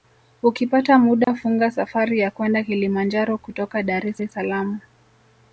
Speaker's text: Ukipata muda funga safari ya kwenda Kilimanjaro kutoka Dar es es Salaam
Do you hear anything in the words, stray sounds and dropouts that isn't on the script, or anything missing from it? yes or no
yes